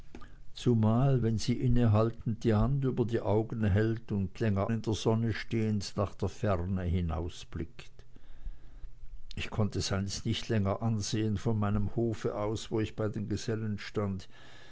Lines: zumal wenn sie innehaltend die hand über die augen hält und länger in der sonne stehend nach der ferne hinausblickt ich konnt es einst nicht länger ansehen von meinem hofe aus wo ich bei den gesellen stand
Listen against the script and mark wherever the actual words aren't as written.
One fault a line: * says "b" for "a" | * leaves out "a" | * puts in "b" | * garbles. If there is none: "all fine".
all fine